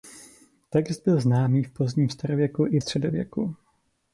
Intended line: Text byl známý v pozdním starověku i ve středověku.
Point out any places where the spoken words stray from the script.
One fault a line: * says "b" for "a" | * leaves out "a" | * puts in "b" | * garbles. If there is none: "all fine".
* leaves out "ve"